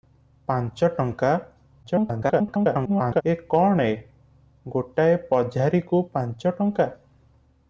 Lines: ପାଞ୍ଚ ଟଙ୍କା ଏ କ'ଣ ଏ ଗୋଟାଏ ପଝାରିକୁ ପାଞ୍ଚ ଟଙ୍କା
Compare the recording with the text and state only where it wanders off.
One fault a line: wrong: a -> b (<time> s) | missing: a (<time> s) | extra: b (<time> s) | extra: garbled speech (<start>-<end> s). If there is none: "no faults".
extra: garbled speech (1.8-3.2 s)